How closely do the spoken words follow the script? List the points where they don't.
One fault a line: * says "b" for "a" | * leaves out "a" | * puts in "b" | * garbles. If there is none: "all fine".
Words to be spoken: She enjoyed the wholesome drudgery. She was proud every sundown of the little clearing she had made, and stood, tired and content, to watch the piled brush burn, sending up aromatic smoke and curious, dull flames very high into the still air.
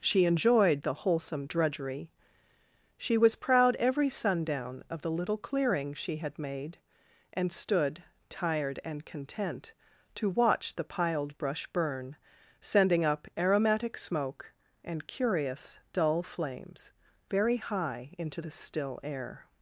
all fine